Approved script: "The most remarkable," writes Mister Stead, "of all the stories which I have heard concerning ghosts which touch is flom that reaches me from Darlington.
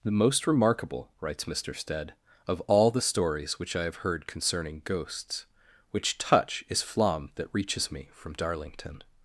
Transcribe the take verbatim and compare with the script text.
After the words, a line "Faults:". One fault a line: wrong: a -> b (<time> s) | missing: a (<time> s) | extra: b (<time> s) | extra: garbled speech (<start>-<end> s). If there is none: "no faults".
"The most remarkable," writes Mister Stead, "of all the stories which I have heard concerning ghosts which touch is flom that reaches me from Darlington.
Faults:
no faults